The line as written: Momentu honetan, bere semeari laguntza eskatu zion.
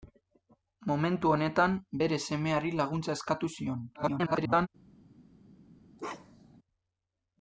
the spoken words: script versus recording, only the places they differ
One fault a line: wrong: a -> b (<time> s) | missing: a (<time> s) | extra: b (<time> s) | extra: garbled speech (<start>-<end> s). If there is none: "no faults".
extra: garbled speech (3.9-4.7 s)